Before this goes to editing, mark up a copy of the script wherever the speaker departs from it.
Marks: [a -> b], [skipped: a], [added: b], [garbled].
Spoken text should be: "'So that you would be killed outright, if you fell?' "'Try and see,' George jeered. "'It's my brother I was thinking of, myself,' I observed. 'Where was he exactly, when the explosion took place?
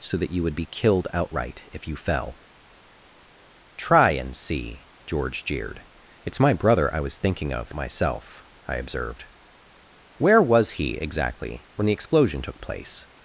"'So that you would be killed outright, if you fell?' "'Try and see,' George jeered. "'It's my brother I was thinking of, myself,' I observed. 'Where was he exactly, when the explosion took place?